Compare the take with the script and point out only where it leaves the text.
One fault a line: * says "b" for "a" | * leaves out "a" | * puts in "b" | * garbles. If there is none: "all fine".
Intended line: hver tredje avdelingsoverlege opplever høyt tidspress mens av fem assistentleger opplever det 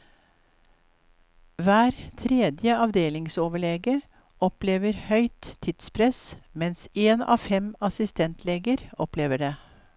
* puts in "én"